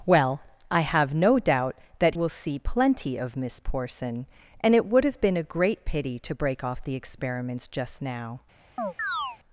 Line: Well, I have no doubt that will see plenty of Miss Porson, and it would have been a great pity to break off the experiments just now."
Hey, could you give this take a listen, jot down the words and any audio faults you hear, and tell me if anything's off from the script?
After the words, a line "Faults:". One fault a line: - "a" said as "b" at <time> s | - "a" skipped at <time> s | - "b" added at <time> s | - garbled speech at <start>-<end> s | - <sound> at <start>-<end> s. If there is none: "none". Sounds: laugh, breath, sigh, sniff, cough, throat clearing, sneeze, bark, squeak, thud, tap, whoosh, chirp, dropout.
Well, I have no doubt that will see plenty of Miss Porson, and it would have been a great pity to break off the experiments just now."
Faults:
- chirp at 8.8-9.4 s